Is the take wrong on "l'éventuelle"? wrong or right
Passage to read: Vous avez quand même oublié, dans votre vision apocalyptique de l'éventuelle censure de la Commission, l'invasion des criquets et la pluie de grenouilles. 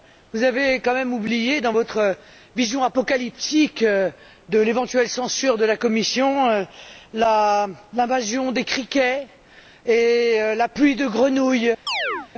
right